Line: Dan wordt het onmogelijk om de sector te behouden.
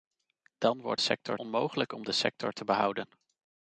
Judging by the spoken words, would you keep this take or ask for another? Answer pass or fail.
fail